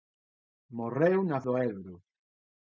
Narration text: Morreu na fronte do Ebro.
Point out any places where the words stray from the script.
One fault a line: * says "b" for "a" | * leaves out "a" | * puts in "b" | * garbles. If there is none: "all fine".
* leaves out "fronte"